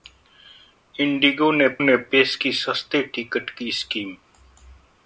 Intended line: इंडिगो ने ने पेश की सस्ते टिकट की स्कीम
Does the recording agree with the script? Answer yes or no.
yes